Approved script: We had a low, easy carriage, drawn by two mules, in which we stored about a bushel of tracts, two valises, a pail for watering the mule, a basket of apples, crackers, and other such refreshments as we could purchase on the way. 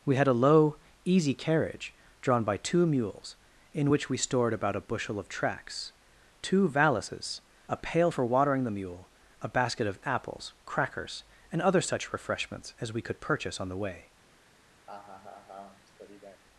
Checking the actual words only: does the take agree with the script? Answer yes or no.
yes